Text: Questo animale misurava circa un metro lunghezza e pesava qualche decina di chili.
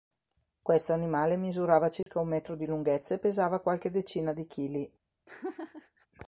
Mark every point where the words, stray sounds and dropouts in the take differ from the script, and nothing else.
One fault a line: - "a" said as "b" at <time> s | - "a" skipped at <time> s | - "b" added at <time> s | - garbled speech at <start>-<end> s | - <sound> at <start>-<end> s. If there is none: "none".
- dropout at 2.0-2.1 s
- "di" added at 2.5 s
- laugh at 5.3-6.1 s